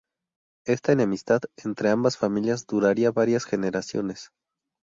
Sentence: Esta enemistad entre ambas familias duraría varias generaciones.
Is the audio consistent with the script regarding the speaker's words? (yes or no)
yes